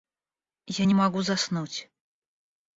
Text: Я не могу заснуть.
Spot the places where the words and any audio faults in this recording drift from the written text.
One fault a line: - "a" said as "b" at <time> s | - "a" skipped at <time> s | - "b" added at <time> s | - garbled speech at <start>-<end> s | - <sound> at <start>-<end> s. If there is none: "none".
none